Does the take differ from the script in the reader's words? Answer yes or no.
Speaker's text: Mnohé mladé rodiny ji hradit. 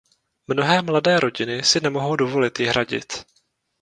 yes